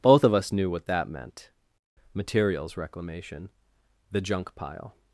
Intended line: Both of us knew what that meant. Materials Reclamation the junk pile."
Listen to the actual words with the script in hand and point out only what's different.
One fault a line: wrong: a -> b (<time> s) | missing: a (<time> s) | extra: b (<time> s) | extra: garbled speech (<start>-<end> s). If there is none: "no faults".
no faults